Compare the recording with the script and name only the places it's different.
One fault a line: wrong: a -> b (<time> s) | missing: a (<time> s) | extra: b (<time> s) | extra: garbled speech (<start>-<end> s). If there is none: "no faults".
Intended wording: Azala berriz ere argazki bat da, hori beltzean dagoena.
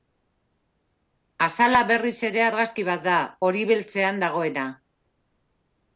no faults